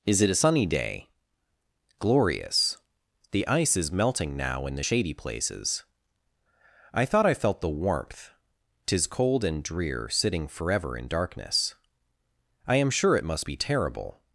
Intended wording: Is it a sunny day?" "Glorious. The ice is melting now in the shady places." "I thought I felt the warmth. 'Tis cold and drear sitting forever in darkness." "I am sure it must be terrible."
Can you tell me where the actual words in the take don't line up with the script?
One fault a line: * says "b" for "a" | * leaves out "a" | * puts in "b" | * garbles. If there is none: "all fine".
all fine